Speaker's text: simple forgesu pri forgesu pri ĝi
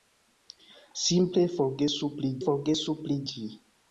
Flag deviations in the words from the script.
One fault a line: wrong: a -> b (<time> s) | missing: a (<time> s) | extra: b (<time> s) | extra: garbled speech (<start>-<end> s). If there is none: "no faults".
no faults